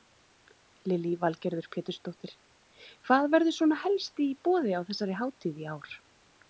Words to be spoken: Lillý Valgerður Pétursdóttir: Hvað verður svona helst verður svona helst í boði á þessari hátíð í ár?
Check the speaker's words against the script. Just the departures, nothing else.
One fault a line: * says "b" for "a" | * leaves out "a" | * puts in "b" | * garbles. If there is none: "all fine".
* leaves out "verður svona helst"